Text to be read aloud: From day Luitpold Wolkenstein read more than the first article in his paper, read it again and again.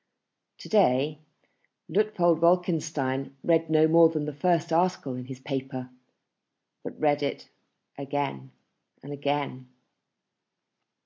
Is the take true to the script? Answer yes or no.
no